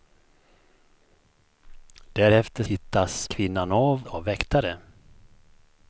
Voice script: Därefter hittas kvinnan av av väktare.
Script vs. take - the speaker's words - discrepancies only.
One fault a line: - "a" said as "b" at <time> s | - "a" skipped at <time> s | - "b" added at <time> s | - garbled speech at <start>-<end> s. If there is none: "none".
none